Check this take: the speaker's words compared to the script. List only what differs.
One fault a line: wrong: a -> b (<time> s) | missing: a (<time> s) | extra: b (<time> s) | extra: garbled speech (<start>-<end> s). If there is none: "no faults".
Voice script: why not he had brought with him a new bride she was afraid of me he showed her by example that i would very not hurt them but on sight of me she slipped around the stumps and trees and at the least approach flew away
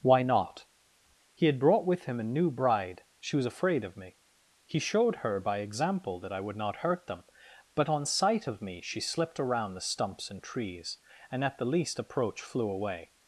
missing: very (6.5 s)